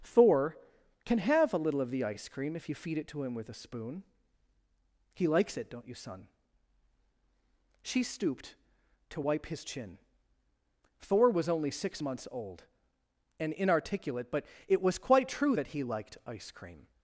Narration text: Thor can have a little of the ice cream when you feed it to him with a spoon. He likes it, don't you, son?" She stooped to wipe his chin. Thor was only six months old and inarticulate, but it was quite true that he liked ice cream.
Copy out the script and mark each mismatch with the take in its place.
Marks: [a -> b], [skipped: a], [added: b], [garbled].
Thor can have a little of the ice cream [when -> if] you feed it to him with a spoon. He likes it, don't you, son?" She stooped to wipe his chin. Thor was only six months old and inarticulate, but it was quite true that he liked ice cream.